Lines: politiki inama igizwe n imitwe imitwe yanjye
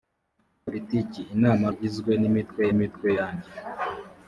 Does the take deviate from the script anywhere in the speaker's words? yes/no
no